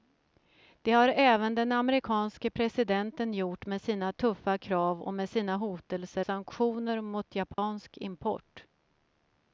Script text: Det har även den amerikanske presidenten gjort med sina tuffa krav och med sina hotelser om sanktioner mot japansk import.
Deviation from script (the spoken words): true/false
true